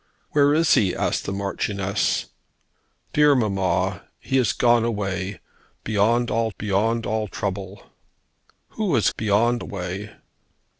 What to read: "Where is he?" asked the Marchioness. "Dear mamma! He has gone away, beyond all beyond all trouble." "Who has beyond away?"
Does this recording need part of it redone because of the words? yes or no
no